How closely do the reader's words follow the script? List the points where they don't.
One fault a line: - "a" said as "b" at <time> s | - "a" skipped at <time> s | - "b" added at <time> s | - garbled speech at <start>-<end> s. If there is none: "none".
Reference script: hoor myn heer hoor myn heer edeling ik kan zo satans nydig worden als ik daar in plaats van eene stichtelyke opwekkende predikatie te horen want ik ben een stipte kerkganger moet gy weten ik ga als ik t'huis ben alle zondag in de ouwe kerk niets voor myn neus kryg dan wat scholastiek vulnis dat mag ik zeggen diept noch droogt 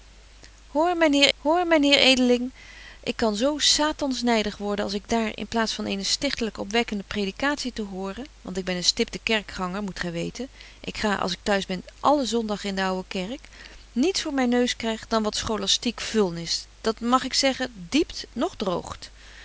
none